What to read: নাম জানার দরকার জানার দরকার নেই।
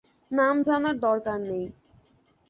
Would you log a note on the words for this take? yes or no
yes